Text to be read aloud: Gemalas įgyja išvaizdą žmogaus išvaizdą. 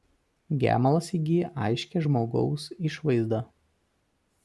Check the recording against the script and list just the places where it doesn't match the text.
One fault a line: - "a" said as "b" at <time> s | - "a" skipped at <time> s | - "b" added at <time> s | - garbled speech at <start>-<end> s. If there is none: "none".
- "išvaizdą" said as "aiškią" at 1.7 s